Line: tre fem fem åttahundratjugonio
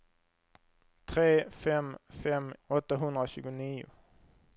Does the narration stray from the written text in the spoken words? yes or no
no